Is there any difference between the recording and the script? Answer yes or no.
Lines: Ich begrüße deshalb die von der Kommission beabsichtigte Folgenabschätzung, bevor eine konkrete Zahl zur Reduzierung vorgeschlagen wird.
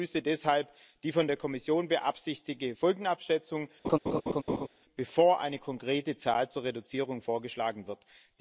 no